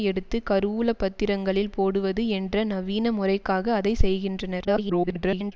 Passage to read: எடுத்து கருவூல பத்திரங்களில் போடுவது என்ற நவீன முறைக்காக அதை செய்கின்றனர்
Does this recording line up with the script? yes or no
no